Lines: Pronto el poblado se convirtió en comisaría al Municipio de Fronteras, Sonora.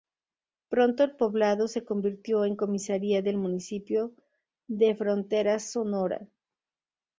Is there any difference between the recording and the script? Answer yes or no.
yes